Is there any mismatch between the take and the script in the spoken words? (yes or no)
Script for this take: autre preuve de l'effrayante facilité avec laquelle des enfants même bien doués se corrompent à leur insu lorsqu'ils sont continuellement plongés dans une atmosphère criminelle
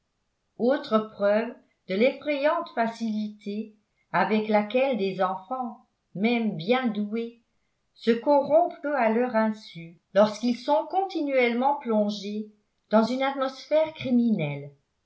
no